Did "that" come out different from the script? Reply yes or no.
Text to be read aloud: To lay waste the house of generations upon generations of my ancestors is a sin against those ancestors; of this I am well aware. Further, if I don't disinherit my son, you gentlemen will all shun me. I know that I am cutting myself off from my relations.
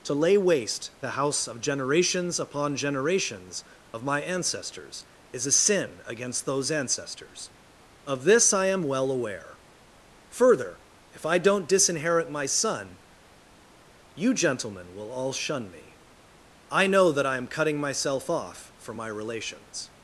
no